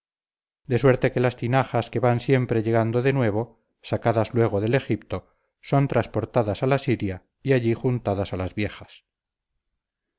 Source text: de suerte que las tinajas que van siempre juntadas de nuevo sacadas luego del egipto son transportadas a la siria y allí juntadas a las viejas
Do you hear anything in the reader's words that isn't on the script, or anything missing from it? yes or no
yes